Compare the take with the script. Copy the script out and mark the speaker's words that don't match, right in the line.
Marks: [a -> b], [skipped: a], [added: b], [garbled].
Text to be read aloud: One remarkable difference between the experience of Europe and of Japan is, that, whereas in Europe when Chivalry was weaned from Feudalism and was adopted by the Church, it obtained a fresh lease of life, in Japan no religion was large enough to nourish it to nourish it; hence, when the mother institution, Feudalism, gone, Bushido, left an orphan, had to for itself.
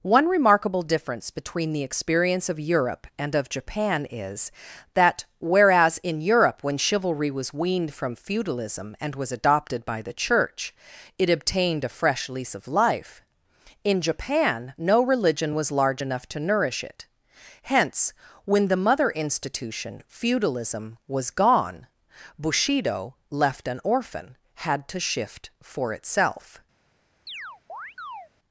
One remarkable difference between the experience of Europe and of Japan is, that, whereas in Europe when Chivalry was weaned from Feudalism and was adopted by the Church, it obtained a fresh lease of life, in Japan no religion was large enough to nourish it [skipped: to nourish it;] hence, when the mother institution, Feudalism, [added: was] gone, Bushido, left an orphan, had to [added: shift] for itself.